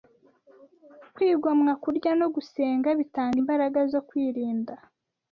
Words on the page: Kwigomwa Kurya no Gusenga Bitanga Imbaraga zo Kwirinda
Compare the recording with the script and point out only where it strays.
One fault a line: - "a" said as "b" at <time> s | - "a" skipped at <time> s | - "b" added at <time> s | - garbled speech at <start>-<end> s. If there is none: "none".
none